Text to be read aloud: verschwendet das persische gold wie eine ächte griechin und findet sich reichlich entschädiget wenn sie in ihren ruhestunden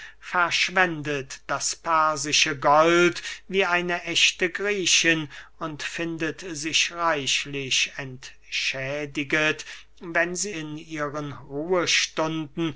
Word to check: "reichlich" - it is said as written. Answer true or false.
true